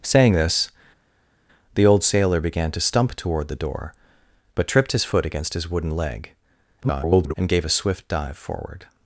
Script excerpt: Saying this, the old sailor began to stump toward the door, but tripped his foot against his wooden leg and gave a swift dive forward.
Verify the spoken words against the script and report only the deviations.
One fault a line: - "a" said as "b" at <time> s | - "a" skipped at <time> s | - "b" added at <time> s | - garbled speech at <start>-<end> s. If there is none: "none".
- garbled speech at 6.8-7.3 s